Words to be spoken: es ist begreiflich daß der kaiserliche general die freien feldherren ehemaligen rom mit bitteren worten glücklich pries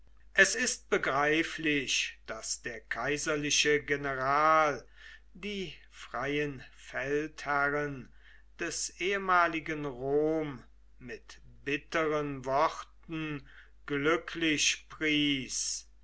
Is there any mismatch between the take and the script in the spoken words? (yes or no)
yes